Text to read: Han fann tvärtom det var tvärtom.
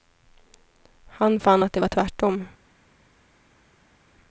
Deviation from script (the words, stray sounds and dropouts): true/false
true